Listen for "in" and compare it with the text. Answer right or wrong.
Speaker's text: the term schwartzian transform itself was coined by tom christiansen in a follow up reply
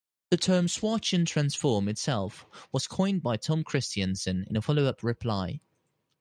right